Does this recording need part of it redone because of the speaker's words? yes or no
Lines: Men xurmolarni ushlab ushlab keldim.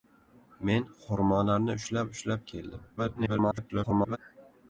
yes